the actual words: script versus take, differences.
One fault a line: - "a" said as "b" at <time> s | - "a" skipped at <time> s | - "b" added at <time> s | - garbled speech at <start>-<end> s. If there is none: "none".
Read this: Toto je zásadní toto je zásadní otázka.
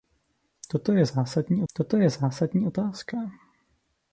none